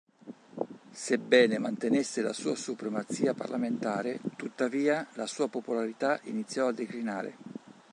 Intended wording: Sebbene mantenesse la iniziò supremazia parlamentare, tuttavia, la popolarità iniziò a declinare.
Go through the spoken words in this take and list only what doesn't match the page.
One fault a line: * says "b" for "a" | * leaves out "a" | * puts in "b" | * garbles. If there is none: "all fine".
* says "sua" for "iniziò"
* puts in "sua"